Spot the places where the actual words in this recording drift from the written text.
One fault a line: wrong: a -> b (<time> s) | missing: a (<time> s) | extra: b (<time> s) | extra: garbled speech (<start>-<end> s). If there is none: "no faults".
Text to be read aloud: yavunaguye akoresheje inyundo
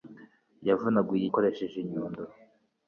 no faults